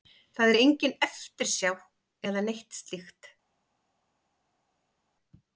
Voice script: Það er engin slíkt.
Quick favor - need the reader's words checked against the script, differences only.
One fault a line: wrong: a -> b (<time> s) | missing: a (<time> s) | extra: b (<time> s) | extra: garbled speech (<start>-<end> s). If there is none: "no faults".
extra: eftirsjá eða neitt (1.1 s)